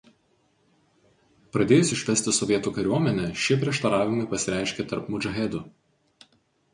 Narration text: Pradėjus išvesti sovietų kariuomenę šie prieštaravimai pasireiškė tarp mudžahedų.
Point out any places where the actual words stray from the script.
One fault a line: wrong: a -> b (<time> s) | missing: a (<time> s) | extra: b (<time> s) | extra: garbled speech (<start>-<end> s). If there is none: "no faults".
no faults